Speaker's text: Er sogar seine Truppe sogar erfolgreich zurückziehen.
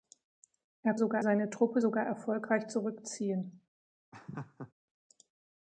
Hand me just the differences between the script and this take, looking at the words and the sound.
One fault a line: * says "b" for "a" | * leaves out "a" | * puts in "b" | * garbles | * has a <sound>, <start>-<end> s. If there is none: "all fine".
* has a laugh, 4.1-4.7 s